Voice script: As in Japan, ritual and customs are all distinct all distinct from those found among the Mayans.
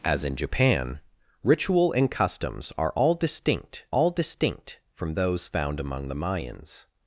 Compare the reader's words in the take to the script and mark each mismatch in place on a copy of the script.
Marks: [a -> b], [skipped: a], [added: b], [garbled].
As in Japan, ritual and customs are all distinct all distinct from those found among the Mayans.